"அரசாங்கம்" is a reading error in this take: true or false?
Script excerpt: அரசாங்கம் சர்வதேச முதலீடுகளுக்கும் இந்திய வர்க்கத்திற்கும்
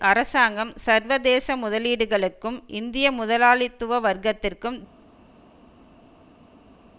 false